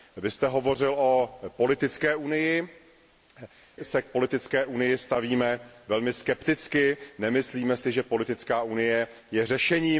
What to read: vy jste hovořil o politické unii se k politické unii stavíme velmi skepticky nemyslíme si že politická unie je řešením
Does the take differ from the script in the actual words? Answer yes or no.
no